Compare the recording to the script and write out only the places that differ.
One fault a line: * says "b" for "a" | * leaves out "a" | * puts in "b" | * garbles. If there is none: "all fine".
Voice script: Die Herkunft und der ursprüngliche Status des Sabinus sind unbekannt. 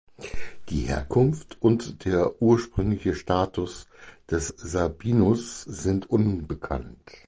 all fine